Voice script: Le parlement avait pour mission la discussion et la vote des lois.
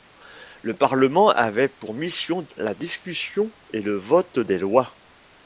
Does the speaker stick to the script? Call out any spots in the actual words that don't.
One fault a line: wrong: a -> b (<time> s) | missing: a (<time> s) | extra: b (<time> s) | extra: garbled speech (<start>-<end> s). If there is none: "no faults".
wrong: la -> le (3.8 s)